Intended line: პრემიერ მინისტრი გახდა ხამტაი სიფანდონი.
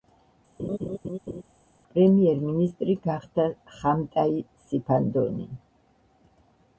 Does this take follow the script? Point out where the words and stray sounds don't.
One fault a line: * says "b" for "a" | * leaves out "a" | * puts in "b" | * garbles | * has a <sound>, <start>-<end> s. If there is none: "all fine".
* has a laugh, 0.6-1.4 s